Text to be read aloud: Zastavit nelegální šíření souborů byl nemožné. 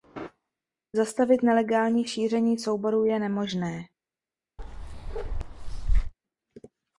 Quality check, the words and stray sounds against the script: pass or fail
fail